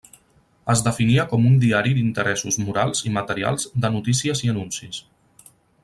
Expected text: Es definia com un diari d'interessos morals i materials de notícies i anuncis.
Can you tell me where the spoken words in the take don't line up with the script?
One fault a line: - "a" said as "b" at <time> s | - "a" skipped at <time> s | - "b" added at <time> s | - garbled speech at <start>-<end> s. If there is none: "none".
none